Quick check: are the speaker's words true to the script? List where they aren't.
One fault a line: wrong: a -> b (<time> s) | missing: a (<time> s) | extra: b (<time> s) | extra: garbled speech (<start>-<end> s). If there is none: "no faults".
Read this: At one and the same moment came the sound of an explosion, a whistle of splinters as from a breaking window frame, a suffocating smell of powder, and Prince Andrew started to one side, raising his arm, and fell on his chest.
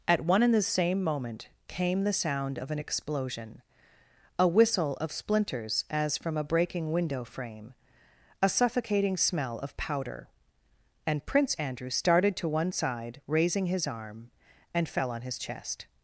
no faults